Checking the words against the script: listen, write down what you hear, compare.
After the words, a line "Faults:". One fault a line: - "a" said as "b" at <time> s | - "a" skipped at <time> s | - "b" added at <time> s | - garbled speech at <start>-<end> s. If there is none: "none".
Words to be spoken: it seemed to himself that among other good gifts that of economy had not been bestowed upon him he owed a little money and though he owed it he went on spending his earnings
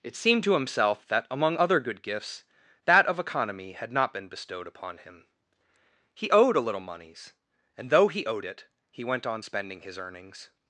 it seemed to himself that among other good gifts that of economy had not been bestowed upon him he owed a little moneys and though he owed it he went on spending his earnings
Faults:
- "money" said as "moneys" at 6.8 s